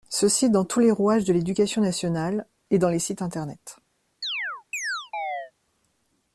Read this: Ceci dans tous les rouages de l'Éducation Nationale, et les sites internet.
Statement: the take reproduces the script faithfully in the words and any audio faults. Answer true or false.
false